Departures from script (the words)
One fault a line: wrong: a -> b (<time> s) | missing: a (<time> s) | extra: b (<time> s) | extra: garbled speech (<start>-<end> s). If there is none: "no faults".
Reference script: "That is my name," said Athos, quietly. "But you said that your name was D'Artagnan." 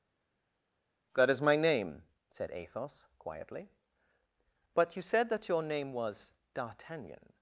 no faults